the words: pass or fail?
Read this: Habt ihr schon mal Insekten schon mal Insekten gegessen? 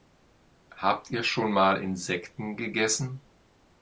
fail